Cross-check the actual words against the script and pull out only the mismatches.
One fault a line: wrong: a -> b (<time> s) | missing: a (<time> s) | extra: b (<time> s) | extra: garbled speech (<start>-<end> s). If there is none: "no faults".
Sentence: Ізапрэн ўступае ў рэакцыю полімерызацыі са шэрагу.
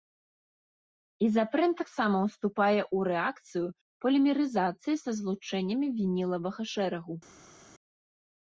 extra: таксама (1.8 s)
extra: злучэннямі вінілавага (5.2 s)